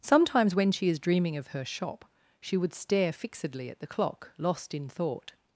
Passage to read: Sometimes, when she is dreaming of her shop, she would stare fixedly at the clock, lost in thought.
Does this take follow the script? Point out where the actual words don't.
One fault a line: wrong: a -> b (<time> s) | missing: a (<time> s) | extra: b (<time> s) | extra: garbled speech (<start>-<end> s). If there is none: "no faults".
no faults